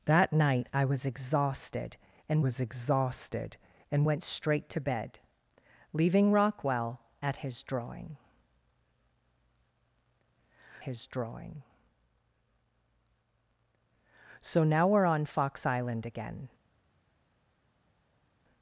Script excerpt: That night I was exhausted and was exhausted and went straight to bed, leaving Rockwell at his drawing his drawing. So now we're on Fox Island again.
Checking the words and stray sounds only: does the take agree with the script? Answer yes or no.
yes